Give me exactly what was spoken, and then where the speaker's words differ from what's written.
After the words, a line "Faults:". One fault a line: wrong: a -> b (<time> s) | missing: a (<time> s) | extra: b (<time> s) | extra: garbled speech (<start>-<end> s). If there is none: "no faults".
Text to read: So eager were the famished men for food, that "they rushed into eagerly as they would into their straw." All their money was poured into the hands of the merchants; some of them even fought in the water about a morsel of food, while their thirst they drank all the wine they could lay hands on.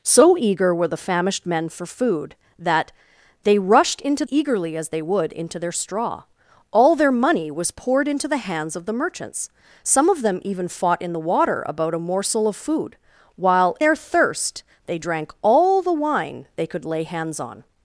So eager were the famished men for food, that "they rushed into eagerly as they would into their straw." All their money was poured into the hands of the merchants; some of them even fought in the water about a morsel of food, while their thirst they drank all the wine they could lay hands on.
Faults:
no faults